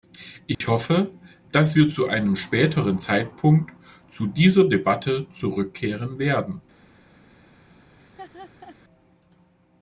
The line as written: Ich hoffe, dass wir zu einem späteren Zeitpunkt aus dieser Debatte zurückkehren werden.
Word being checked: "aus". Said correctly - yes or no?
no